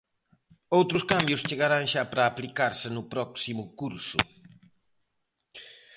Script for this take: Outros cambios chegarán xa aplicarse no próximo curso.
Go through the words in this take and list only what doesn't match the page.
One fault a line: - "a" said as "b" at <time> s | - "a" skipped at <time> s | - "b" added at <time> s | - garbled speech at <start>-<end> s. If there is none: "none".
- "para" added at 2.1 s